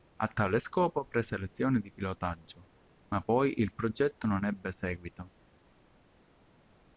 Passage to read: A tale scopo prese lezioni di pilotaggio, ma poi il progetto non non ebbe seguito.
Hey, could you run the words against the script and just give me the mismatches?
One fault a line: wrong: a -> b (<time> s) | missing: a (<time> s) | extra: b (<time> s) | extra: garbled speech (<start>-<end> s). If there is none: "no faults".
missing: non (4.4 s)